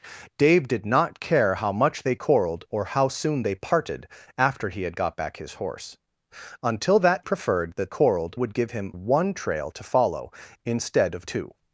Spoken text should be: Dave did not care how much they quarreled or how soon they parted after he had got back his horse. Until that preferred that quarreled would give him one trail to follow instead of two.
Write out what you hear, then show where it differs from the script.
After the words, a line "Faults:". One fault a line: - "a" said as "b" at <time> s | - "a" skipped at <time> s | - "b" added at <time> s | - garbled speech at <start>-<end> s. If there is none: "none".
Dave did not care how much they quarreled or how soon they parted after he had got back his horse. Until that preferred that quarreled would give him one trail to follow instead of two.
Faults:
none